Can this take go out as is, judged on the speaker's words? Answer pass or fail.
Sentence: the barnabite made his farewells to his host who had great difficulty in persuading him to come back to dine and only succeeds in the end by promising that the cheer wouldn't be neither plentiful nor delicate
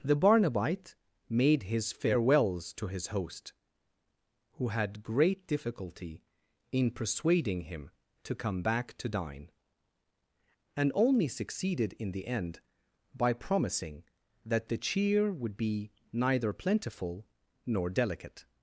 fail